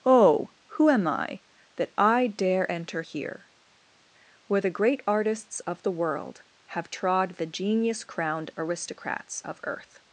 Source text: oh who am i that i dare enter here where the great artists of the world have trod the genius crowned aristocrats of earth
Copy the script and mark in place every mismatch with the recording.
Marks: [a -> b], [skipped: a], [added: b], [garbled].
oh who am i that i dare enter here where the great artists of the world have trod the genius crowned aristocrats of earth